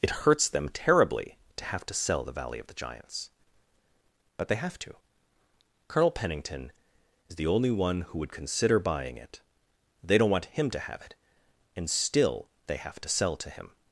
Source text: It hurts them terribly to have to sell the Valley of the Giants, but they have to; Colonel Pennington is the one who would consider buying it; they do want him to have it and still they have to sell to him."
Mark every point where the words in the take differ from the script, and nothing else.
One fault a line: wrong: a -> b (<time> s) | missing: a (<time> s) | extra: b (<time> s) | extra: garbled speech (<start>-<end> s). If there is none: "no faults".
extra: only (7.5 s)
wrong: do -> don't (10.2 s)